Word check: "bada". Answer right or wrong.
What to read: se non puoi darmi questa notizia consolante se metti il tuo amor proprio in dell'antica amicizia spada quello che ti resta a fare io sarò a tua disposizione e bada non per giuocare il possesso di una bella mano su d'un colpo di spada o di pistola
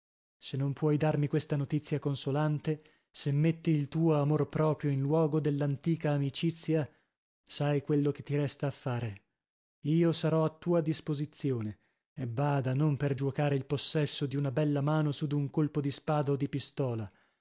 right